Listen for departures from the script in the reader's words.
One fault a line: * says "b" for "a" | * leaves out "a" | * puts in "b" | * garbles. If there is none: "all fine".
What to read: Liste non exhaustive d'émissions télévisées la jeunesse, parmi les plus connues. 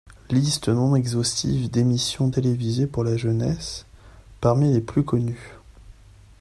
* puts in "pour"